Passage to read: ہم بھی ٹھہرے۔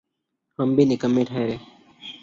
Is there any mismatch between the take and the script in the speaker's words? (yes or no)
yes